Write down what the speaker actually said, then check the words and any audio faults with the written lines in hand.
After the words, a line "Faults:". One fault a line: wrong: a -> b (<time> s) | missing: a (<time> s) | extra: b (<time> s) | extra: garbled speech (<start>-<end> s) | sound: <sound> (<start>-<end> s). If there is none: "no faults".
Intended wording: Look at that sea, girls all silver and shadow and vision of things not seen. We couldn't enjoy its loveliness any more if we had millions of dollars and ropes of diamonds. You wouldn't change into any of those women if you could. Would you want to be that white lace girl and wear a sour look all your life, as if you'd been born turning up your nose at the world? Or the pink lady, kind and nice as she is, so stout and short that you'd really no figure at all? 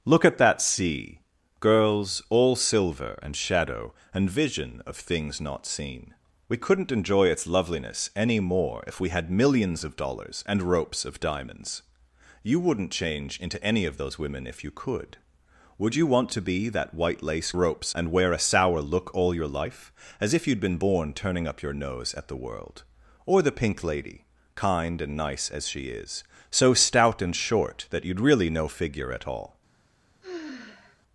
Look at that sea, girls all silver and shadow and vision of things not seen. We couldn't enjoy its loveliness any more if we had millions of dollars and ropes of diamonds. You wouldn't change into any of those women if you could. Would you want to be that white lace ropes and wear a sour look all your life, as if you'd been born turning up your nose at the world? Or the pink lady, kind and nice as she is, so stout and short that you'd really no figure at all?
Faults:
wrong: girl -> ropes (17.5 s)
sound: sigh (30.2-31.0 s)